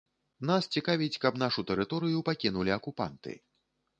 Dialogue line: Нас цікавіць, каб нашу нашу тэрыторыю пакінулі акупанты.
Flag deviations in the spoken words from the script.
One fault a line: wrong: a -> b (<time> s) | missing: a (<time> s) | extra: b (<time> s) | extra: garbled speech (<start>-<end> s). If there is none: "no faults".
missing: нашу (1.6 s)